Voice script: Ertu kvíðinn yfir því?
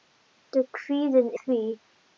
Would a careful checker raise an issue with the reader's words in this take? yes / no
yes